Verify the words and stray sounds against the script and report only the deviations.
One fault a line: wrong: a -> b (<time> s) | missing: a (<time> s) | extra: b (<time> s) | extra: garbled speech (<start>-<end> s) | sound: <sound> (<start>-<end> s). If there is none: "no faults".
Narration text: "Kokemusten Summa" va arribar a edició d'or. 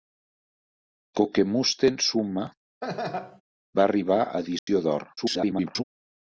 sound: laugh (2.8-3.4 s)
sound: dropout (4.6-4.7 s)
extra: garbled speech (5.2-5.8 s)